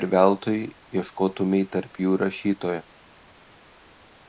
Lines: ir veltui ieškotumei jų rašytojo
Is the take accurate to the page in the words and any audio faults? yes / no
no